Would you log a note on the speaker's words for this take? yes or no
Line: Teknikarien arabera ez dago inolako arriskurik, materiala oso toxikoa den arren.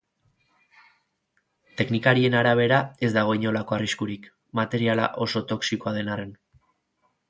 no